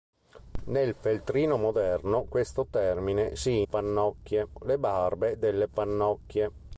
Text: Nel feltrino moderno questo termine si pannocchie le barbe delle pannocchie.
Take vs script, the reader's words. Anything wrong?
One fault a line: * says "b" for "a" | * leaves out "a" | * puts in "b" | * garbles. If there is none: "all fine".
all fine